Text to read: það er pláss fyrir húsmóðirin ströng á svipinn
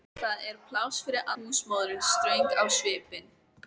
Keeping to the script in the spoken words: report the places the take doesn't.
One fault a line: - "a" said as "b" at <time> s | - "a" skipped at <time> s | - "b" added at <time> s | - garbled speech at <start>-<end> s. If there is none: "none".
none